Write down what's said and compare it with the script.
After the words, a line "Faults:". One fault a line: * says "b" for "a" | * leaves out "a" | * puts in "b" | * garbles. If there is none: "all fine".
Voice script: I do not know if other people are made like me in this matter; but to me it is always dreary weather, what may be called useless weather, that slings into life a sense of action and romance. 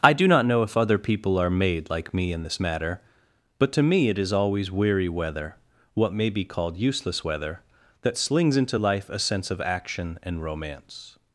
I do not know if other people are made like me in this matter; but to me it is always weary weather, what may be called useless weather, that slings into life a sense of action and romance.
Faults:
* says "weary" for "dreary"